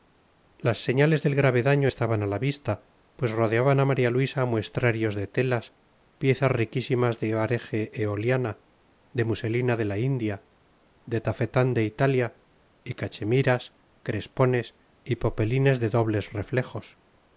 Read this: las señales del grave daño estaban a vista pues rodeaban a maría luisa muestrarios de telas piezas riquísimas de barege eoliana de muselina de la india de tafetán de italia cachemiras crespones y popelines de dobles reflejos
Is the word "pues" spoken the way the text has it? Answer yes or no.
yes